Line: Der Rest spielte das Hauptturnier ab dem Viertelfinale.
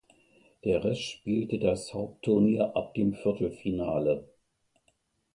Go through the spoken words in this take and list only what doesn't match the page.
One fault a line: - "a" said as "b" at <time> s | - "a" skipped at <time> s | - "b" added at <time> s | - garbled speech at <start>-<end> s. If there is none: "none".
none